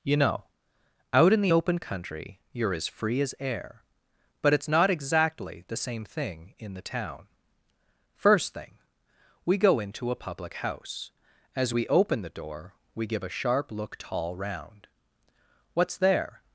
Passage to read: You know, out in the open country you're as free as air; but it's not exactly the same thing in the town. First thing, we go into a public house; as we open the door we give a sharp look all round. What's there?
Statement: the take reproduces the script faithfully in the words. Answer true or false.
false